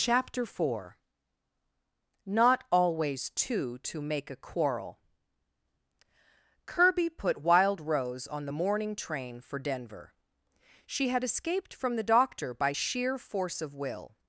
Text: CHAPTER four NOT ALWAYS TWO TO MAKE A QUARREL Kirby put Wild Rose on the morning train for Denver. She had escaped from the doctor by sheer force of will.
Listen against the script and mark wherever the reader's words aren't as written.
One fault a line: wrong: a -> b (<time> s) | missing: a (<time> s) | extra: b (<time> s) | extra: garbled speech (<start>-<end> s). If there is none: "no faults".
no faults